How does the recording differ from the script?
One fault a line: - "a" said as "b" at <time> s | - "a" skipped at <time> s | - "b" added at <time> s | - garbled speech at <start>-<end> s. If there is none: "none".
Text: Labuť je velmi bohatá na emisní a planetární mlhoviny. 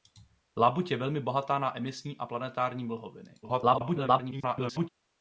- garbled speech at 3.4-4.9 s